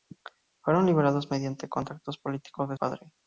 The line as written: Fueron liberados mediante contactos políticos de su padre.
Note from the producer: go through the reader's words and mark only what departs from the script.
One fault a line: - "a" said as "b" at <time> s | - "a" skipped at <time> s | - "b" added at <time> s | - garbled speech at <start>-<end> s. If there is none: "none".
- "su" skipped at 2.8 s